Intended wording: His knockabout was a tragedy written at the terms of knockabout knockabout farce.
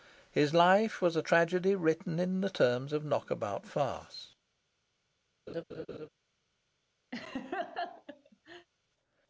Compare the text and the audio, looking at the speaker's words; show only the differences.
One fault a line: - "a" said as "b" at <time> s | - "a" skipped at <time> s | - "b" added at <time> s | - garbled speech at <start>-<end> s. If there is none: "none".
- "knockabout" said as "life" at 0.5 s
- "at" said as "in" at 2.2 s
- "knockabout" skipped at 3.6 s